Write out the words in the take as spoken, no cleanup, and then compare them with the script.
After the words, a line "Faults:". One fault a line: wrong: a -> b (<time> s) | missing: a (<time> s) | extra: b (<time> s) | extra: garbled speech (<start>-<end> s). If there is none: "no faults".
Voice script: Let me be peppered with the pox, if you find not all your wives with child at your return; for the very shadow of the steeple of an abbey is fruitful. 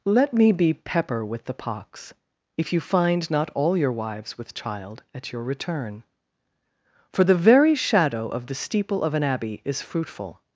Let me be pepper with the pox, if you find not all your wives with child at your return; for the very shadow of the steeple of an abbey is fruitful.
Faults:
wrong: peppered -> pepper (0.7 s)